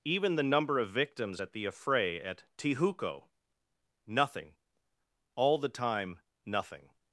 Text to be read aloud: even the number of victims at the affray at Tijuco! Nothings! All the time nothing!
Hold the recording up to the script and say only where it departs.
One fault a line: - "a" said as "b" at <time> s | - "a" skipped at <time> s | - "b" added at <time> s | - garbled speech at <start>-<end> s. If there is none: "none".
- "Nothings" said as "Nothing" at 4.1 s